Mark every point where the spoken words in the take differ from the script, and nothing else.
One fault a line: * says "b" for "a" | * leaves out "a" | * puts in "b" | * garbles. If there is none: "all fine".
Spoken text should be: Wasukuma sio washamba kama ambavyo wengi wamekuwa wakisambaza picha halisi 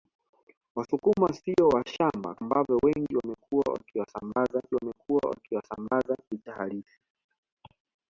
* leaves out "kama"
* puts in "wamekuwa wakisambaza"